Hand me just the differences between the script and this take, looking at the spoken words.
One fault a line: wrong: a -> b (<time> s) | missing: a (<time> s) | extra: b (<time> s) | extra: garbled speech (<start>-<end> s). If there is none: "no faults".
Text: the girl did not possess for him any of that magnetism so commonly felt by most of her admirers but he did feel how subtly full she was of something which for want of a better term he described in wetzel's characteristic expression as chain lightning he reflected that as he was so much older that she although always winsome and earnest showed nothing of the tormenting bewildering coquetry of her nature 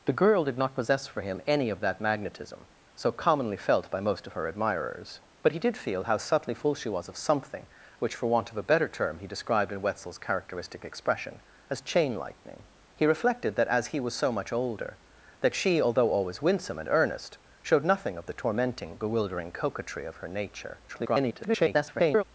extra: garbled speech (20.9-22.2 s)